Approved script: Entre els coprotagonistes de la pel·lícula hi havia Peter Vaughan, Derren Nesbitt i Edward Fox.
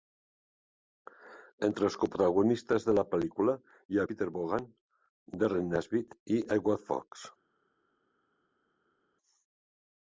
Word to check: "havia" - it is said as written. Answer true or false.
false